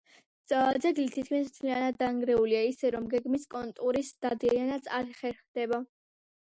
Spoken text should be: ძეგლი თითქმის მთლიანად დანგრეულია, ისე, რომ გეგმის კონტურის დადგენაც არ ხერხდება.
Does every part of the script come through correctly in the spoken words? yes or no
yes